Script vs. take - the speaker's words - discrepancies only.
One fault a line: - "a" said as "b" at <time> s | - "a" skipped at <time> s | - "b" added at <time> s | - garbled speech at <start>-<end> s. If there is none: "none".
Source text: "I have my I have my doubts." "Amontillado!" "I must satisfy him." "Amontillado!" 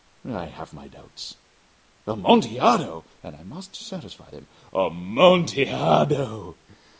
- "I have my" skipped at 0.9 s
- "And" added at 3.2 s
- "him" said as "them" at 4.3 s